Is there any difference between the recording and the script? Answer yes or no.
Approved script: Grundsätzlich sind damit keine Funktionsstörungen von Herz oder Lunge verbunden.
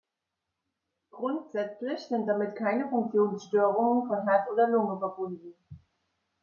no